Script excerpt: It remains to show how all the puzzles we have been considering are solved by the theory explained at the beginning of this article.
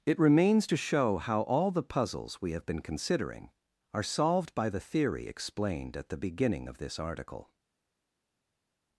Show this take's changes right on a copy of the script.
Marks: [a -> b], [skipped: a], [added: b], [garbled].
It remains to show how all the puzzles we have been considering are solved by the theory explained at the beginning of this article.